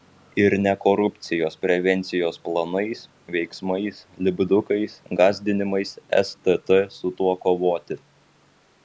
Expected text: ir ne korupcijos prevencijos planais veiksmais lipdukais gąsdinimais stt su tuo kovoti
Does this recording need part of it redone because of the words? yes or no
no